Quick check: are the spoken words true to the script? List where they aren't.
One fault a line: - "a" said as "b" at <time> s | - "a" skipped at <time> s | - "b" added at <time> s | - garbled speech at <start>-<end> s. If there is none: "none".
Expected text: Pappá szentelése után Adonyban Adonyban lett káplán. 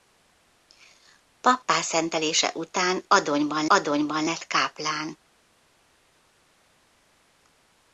none